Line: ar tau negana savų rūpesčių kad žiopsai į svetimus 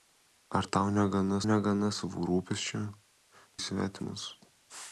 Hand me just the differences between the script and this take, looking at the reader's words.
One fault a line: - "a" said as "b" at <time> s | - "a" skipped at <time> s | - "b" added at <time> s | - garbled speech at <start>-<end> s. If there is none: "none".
- "negana" added at 1.5 s
- "kad žiopsai" skipped at 2.8 s